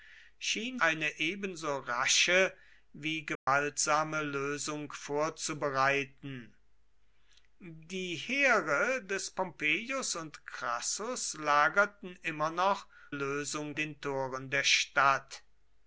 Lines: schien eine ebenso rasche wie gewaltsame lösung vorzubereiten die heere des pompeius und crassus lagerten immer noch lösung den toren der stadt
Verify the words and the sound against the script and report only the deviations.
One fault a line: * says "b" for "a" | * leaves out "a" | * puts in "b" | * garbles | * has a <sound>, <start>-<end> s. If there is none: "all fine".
* has a dropout, 3.4-3.5 s